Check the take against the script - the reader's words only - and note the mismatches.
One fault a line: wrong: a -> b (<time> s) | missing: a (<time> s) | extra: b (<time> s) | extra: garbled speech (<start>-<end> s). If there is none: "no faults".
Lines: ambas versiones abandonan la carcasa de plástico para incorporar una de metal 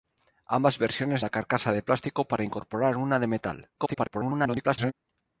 missing: abandonan (1.2 s)
extra: garbled speech (3.8-4.9 s)